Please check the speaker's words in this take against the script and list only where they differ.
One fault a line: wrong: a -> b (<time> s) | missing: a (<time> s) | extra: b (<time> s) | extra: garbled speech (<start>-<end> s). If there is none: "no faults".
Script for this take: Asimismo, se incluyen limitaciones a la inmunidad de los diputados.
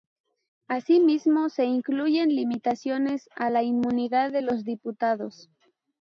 no faults